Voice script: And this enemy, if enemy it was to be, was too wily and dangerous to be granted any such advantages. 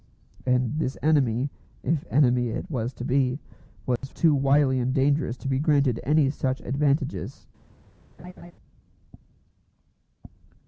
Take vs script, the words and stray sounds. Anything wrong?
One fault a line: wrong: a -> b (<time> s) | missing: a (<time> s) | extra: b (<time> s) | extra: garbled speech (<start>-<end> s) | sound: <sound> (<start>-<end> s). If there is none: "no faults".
sound: dropout (4.0-4.0 s)
sound: laugh (8.2-8.5 s)